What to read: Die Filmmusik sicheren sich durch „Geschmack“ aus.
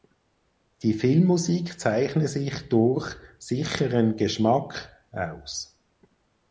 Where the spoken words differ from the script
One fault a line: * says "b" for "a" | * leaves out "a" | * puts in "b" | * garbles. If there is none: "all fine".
* says "zeichne" for "sicheren"
* puts in "sicheren"